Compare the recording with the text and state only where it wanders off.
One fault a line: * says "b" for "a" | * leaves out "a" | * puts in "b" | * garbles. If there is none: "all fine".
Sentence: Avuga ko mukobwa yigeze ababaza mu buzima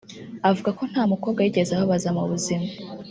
* puts in "nta"